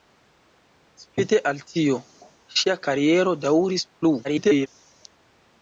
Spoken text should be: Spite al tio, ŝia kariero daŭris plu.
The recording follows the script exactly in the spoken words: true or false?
false